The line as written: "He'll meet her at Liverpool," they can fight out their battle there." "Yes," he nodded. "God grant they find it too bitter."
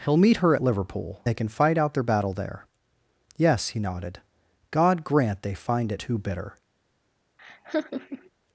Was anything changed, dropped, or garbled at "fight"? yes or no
no